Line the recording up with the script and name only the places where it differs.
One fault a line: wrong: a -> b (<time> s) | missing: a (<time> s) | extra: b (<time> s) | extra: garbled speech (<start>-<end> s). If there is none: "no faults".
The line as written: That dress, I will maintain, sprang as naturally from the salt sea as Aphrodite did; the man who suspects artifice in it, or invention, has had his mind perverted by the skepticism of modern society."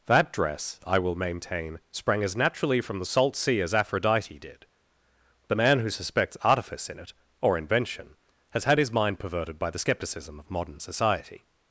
no faults